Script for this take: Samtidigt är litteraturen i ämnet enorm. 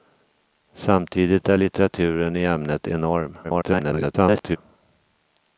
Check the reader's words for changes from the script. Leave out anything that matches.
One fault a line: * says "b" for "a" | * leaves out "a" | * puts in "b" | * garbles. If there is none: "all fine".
* garbles